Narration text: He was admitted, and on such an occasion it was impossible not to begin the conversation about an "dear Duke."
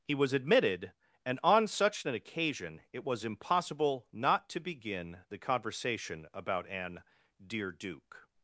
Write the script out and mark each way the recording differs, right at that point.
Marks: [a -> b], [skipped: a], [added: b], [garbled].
He was admitted, and on such an occasion it was impossible not to begin the conversation about an "dear Duke."